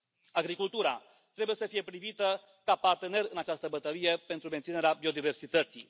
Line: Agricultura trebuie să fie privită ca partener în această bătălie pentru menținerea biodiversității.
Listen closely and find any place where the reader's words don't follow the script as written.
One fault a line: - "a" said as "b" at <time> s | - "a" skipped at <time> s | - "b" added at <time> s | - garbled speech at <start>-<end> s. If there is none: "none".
none